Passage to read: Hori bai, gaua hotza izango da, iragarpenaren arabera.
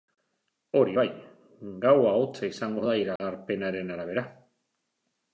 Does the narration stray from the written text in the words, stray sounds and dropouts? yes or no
yes